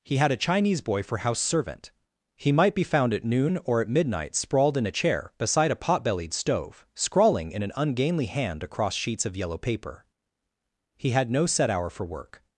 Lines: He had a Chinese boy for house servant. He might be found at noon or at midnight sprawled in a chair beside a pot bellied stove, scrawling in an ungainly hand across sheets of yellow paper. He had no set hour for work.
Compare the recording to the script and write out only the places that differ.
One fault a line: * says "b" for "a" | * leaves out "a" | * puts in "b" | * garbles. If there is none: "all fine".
all fine